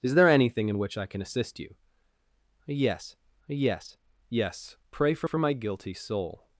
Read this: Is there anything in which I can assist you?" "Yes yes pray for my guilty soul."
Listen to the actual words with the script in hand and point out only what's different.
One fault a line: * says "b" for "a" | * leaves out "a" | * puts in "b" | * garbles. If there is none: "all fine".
* puts in "yes"
* puts in "for"